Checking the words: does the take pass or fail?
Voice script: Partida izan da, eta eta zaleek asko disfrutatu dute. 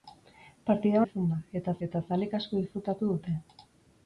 pass